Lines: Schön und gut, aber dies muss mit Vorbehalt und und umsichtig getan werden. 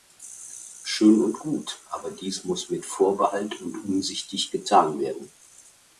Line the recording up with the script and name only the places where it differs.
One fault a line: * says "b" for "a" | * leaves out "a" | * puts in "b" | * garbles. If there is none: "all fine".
* leaves out "und"